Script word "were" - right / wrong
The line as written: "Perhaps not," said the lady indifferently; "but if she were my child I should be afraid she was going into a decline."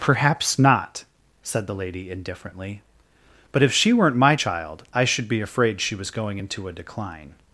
wrong